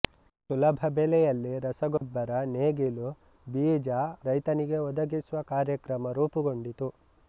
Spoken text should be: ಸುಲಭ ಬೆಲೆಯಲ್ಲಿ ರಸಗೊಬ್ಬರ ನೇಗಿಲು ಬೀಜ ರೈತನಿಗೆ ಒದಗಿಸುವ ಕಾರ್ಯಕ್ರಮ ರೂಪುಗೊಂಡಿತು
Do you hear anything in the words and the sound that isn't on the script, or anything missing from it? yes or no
yes